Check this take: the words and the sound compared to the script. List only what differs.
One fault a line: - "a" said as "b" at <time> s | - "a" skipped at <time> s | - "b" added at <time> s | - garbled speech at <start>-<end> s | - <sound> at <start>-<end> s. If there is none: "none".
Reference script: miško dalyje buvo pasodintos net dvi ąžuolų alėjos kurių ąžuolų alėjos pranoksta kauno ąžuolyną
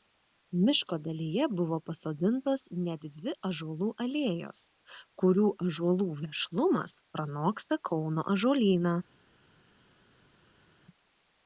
- "alėjos" said as "vešlumas" at 6.2 s